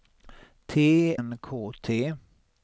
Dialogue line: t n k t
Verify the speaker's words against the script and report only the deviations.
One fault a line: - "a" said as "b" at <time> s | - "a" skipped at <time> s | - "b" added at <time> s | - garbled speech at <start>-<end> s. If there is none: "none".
none